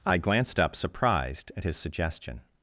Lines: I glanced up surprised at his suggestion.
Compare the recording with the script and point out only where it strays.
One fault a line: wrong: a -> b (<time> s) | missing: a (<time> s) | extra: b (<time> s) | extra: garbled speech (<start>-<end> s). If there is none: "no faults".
no faults